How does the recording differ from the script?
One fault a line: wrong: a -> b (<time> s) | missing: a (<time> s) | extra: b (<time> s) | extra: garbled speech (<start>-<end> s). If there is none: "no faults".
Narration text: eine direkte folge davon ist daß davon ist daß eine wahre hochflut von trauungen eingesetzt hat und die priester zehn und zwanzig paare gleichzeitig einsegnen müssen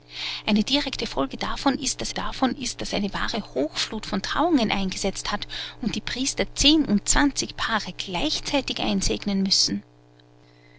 no faults